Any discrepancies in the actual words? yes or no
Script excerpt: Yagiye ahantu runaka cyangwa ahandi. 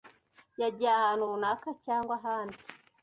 no